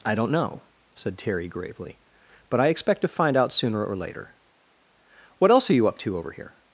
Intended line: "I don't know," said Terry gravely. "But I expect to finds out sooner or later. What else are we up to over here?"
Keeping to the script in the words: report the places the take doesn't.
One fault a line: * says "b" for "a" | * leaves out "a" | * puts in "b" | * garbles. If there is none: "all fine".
* says "find" for "finds"
* says "you" for "we"